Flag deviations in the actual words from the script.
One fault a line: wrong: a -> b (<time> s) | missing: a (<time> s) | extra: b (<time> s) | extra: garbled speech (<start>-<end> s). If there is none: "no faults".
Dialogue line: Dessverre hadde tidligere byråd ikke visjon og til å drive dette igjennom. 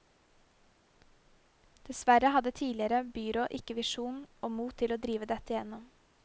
extra: mot (4.6 s)